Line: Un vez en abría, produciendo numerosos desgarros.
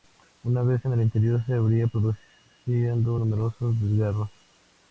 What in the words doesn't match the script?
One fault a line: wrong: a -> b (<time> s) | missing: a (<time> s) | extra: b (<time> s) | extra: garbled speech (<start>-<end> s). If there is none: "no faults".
wrong: Un -> Una (0.4 s)
extra: el interior se (0.9 s)